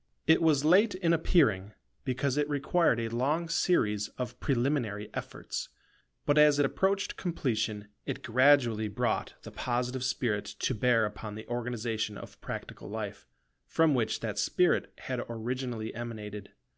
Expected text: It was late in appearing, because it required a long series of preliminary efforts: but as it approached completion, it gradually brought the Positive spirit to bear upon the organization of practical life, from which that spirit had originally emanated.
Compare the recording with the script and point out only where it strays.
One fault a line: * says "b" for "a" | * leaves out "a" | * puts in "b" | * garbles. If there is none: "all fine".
all fine